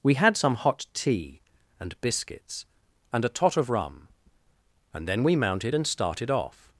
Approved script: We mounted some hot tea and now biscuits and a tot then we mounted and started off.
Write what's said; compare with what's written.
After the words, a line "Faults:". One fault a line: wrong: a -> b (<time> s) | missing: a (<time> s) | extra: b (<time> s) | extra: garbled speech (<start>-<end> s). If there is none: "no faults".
We had some hot tea and biscuits and a tot of rum, and then we mounted and started off.
Faults:
wrong: mounted -> had (0.1 s)
missing: now (2.0 s)
extra: of rum and (3.6 s)